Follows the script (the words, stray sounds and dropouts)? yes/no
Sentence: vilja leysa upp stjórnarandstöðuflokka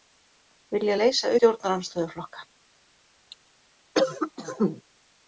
no